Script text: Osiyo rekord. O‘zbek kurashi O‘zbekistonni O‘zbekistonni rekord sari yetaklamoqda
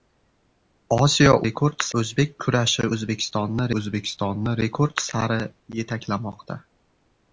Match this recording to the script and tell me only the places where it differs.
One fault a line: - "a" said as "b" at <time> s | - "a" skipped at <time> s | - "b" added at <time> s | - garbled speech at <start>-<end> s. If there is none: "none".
none